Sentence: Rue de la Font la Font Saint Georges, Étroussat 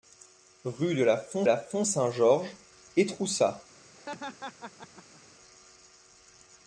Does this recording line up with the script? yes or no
yes